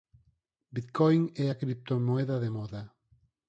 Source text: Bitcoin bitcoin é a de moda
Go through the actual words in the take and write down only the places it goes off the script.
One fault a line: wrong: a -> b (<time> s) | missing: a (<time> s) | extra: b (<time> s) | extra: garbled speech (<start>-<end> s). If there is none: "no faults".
missing: bitcoin (1.2 s)
extra: criptomoeda (1.6 s)